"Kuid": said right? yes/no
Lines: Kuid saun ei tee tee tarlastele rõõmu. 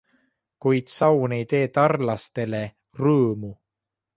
yes